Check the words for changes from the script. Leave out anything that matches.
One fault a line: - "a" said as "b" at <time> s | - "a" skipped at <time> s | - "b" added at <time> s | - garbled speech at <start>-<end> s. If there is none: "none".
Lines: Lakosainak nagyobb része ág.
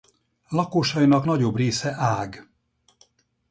none